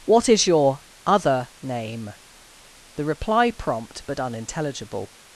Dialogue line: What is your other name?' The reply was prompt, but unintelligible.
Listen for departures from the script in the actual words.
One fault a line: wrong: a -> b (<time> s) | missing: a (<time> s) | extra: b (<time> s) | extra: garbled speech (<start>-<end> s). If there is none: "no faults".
missing: was (3.5 s)